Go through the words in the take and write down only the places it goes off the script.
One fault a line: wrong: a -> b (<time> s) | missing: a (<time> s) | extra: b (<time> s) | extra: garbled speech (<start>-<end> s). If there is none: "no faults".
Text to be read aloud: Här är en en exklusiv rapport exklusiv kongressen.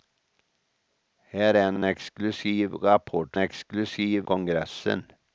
no faults